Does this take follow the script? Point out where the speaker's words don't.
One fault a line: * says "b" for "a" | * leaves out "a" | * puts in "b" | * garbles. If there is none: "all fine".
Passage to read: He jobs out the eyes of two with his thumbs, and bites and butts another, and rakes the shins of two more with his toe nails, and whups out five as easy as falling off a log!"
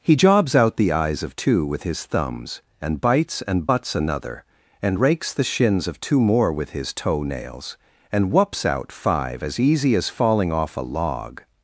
all fine